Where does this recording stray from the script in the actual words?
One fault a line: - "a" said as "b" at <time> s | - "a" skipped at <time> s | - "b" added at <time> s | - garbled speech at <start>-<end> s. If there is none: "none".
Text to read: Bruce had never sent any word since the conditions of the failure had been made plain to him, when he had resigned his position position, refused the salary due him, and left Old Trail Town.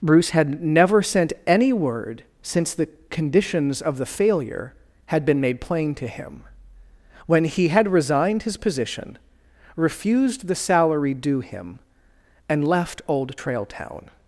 - "position" skipped at 9.2 s